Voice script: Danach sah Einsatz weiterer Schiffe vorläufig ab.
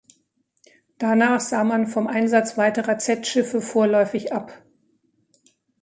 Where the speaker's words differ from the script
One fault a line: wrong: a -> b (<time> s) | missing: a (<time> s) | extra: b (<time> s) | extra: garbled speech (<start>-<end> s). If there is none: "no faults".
extra: man vom (1.6 s)
extra: Z (3.0 s)